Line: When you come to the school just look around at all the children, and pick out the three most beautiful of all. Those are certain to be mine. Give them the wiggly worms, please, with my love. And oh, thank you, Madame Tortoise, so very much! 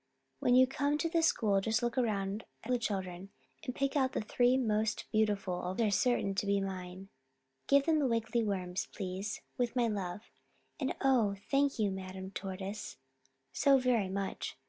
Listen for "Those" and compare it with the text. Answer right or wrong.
wrong